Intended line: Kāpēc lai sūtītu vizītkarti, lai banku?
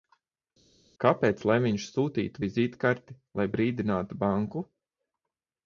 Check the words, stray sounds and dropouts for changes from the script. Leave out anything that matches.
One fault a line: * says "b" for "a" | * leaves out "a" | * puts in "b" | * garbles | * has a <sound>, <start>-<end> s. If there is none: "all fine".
* puts in "viņš"
* puts in "brīdinātu"